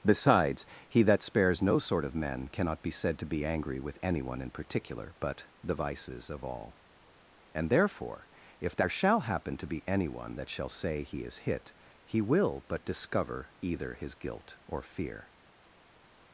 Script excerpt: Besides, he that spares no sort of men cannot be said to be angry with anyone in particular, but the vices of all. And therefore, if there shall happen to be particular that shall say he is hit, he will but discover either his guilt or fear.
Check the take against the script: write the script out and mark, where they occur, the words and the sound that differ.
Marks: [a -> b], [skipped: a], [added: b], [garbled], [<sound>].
Besides, he that spares no sort of men cannot be said to be angry with anyone in particular, but the vices of all. And therefore, if there shall happen to be [particular -> anyone] that shall say he is hit, he will but discover either his guilt or fear.